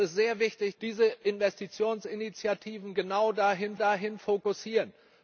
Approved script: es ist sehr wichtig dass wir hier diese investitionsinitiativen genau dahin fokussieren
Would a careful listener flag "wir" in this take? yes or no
yes